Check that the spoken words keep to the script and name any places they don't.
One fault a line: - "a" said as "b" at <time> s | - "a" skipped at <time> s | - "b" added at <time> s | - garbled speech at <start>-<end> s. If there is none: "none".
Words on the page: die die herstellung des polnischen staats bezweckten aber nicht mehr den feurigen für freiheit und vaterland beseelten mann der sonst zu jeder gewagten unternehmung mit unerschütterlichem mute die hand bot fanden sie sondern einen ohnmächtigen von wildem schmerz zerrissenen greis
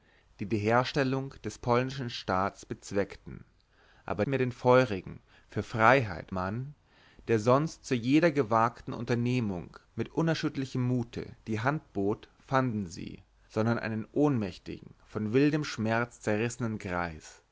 - "nicht" skipped at 4.2 s
- "und vaterland beseelten" skipped at 6.3 s